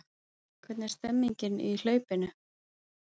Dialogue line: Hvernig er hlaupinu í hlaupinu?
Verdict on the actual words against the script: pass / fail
fail